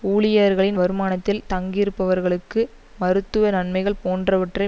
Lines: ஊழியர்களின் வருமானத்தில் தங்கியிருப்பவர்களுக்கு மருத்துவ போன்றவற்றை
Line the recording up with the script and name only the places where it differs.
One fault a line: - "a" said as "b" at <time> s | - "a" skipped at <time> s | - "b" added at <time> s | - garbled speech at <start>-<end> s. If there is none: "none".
- "நன்மைகள்" added at 3.5 s